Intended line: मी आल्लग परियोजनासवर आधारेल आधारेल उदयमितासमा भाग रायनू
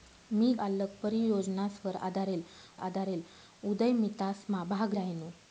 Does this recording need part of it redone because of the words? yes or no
no